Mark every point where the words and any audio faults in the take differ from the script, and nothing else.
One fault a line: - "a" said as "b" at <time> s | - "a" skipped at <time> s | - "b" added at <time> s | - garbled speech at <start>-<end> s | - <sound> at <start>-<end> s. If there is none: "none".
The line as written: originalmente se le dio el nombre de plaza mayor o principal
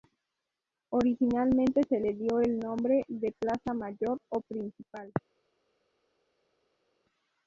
none